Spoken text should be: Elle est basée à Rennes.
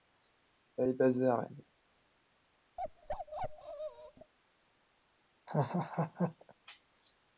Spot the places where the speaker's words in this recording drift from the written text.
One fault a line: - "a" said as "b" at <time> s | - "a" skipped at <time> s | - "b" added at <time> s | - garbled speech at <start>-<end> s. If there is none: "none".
none